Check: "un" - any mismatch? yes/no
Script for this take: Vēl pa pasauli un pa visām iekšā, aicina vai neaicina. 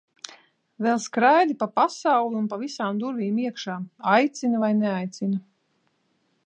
no